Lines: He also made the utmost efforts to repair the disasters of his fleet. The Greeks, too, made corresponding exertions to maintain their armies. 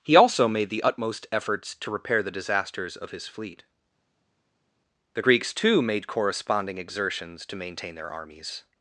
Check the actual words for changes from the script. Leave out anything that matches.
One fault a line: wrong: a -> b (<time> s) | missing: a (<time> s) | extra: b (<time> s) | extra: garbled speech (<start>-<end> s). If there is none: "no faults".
no faults